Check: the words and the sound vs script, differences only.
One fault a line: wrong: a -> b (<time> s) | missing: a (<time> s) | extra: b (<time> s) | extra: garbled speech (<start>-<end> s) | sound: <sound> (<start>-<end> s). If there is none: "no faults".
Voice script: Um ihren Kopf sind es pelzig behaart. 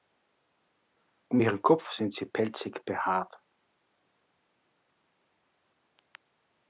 wrong: es -> sie (2.1 s)